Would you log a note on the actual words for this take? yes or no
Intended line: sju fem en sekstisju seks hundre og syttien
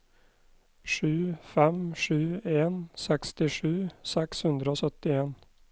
yes